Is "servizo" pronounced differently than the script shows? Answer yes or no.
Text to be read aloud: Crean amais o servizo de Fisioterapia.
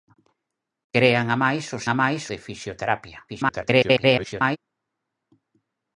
yes